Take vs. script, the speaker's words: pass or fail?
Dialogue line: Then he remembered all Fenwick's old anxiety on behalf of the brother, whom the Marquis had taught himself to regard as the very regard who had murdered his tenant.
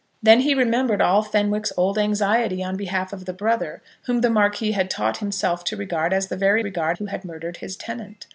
pass